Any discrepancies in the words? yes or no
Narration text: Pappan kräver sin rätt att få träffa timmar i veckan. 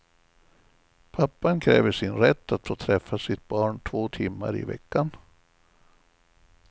yes